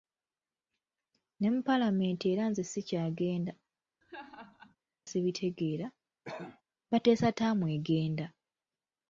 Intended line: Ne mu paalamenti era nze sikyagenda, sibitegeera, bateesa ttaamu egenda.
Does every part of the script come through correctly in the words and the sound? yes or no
no